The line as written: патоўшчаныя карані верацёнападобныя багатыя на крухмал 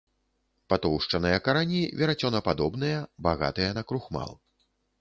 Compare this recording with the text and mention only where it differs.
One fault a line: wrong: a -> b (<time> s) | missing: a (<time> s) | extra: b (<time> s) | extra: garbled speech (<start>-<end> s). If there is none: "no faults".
no faults